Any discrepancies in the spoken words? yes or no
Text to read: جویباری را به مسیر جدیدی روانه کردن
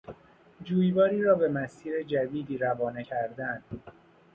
no